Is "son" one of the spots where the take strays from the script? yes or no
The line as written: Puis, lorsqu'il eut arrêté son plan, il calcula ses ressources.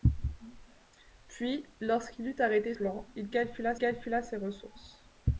yes